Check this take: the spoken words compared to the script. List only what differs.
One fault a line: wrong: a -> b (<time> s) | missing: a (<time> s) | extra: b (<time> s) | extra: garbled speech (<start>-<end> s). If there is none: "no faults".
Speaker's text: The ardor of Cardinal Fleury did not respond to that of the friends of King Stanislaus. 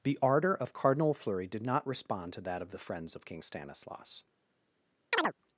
no faults